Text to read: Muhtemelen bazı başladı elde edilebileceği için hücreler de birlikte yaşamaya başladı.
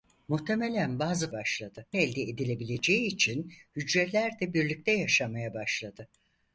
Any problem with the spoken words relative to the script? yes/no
no